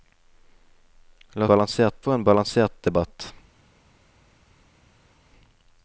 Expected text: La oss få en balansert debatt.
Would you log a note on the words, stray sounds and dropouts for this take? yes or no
yes